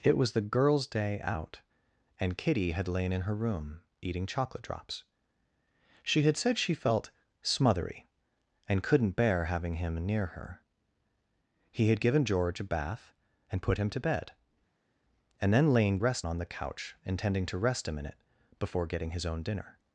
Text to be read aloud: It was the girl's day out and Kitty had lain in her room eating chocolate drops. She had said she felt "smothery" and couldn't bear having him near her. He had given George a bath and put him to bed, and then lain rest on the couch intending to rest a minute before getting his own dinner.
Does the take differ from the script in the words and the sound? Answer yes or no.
no